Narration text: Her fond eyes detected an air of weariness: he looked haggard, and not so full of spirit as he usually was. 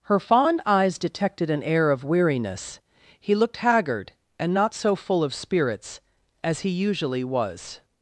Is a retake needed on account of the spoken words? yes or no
yes